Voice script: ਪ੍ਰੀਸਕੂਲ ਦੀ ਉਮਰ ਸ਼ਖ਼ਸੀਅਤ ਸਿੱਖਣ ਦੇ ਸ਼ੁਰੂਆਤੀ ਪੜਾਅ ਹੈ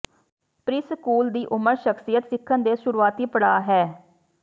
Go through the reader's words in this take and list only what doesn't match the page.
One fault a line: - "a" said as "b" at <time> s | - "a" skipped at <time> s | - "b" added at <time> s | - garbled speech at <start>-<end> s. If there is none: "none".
none